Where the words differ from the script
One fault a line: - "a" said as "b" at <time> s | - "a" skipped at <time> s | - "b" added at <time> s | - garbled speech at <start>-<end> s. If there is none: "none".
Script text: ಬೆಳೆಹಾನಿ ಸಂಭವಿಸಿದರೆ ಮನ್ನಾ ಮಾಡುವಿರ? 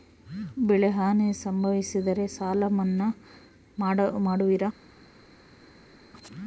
- "ಸಾಲ" added at 2.3 s